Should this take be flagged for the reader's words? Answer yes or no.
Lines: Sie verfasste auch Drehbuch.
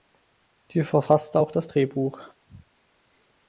yes